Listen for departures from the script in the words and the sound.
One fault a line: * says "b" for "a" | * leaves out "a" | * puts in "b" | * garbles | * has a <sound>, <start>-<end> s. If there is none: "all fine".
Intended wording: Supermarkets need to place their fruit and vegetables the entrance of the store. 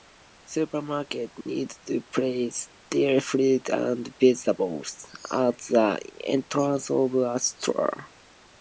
* has a dropout, 1.4-1.5 s
* puts in "at"
* says "a" for "the"